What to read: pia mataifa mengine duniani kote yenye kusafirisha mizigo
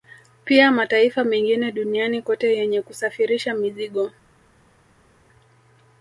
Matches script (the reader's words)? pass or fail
pass